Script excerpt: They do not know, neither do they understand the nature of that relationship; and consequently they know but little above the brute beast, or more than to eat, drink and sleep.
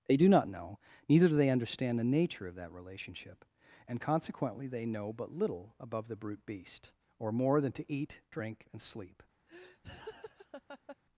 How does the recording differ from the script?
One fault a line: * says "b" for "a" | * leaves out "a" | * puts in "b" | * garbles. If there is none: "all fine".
all fine